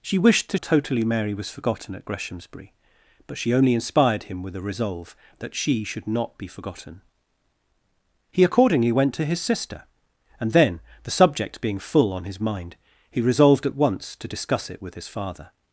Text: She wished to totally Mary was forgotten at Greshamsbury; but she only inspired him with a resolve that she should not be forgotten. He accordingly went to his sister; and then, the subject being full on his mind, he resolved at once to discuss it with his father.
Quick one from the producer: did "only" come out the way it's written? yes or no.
yes